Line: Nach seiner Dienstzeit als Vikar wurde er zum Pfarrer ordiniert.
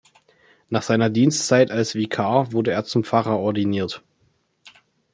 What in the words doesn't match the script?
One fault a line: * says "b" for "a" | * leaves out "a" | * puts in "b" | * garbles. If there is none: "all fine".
all fine